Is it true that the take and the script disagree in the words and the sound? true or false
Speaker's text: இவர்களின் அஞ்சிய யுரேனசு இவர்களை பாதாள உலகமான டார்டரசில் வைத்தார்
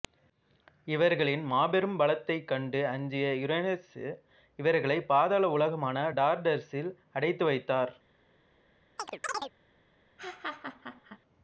true